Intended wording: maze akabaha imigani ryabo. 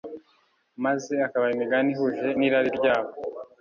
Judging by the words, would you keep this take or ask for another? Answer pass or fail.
fail